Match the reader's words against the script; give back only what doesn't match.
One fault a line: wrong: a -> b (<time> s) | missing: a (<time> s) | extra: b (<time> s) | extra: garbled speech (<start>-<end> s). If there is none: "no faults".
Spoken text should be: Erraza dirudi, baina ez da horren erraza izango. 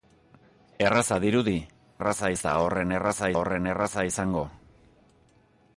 wrong: baina -> erraza (2.0 s)
extra: horren erraza (3.4 s)